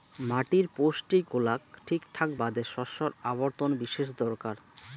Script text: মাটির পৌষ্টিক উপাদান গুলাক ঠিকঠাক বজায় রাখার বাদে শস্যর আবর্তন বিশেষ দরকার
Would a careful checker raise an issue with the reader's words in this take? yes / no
yes